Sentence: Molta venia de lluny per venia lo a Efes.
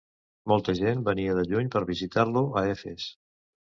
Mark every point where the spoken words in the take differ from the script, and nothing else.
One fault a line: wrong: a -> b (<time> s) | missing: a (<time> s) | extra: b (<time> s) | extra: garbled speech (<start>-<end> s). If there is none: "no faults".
extra: gent (0.8 s)
wrong: venia -> visitar (1.9 s)